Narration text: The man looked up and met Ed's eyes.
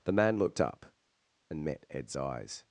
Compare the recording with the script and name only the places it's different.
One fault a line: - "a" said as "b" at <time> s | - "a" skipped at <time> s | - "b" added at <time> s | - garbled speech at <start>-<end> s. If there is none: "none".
none